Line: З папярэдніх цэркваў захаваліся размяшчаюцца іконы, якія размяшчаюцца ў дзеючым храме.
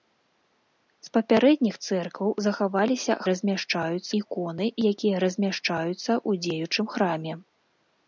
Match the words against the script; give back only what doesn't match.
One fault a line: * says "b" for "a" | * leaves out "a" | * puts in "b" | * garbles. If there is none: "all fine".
all fine